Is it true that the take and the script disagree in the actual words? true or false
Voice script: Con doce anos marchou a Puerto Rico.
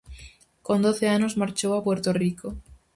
false